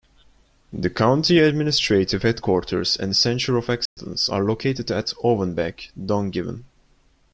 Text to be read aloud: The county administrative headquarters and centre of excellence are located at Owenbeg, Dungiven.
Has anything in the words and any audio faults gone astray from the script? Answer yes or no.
yes